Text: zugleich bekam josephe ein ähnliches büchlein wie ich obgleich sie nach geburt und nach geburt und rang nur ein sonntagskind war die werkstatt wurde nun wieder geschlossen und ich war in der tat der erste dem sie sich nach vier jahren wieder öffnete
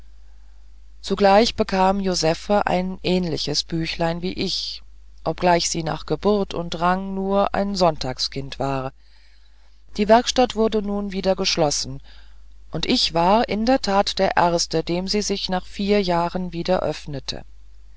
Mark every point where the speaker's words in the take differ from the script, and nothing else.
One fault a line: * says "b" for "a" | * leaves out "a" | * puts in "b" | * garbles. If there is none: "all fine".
* leaves out "nach geburt und"